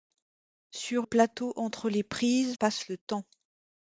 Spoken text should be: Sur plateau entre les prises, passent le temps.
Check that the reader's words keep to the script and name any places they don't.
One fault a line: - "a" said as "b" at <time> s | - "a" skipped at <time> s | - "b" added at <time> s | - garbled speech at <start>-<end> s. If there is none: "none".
none